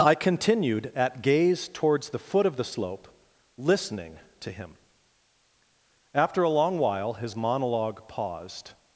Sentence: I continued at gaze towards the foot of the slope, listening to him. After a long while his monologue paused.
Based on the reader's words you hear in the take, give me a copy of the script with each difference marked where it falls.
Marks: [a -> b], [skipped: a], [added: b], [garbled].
I continued at gaze towards the foot of the slope, listening to him. After a long while his monologue paused.